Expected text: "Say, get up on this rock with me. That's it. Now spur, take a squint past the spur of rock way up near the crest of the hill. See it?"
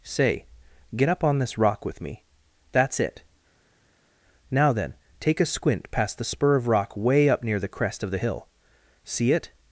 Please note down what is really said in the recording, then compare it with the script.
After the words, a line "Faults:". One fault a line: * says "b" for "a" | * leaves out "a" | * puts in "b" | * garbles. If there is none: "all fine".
"Say, get up on this rock with me. That's it. Now then, take a squint past the spur of rock way up near the crest of the hill. See it?"
Faults:
* says "then" for "spur"